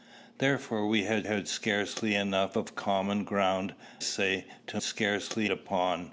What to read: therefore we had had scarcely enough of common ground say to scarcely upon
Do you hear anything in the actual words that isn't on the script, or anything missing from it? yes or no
no